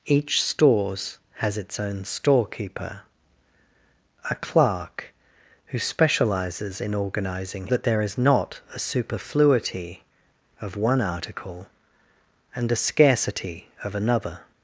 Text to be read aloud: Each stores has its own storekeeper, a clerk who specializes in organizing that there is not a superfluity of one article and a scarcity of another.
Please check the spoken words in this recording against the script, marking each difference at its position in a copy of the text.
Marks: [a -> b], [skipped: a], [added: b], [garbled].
Each stores has its own storekeeper, a clerk who specializes in organizing that there is not a superfluity of one article and a scarcity of another.